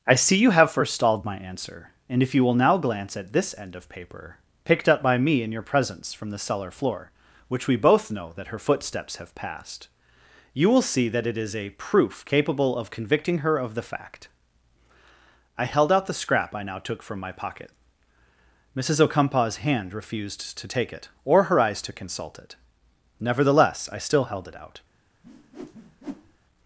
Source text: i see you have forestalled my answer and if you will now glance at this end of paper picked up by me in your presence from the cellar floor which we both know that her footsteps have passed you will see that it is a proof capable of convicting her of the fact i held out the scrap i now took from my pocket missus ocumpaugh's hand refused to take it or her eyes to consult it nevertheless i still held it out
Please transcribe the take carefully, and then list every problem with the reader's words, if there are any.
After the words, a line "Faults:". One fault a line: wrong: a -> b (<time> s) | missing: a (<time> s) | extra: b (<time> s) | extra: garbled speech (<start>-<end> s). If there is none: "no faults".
i see you have forestalled my answer and if you will now glance at this end of paper picked up by me in your presence from the cellar floor which we both know that her footsteps have passed you will see that it is a proof capable of convicting her of the fact i held out the scrap i now took from my pocket missus ocumpaugh's hand refused to take it or her eyes to consult it nevertheless i still held it out
Faults:
no faults